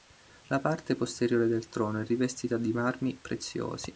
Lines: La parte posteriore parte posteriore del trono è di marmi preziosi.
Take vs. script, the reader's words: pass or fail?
fail